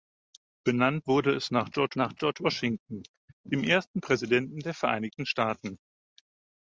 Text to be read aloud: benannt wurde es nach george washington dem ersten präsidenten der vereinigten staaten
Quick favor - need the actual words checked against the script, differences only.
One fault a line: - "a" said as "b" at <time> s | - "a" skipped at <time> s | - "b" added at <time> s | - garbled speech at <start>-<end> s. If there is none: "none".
- "nach george" added at 2.0 s